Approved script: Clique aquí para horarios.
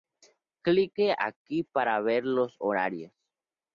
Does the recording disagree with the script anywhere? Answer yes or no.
yes